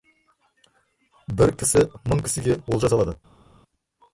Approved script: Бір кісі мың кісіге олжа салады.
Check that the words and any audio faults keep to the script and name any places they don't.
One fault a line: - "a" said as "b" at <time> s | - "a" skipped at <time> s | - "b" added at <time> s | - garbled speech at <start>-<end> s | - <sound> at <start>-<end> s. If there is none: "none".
none